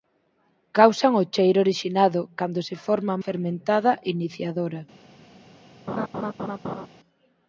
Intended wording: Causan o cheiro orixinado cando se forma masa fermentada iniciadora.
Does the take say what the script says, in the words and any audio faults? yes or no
no